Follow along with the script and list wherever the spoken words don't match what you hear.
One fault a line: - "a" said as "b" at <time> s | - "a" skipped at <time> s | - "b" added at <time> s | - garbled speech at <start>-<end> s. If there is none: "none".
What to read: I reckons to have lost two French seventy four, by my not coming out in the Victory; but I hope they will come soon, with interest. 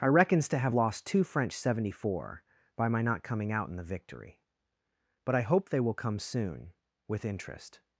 none